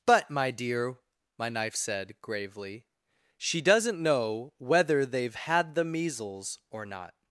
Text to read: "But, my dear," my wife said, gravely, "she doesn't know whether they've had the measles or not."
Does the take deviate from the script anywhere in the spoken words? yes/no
yes